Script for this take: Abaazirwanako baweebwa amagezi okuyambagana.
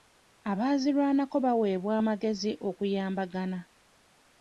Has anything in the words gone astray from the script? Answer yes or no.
no